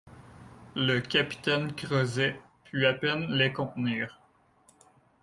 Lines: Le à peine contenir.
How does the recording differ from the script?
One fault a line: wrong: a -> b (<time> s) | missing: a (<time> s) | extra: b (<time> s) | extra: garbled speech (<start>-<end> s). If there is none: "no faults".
extra: capitaine Crozet put (1.0 s)
extra: les (3.3 s)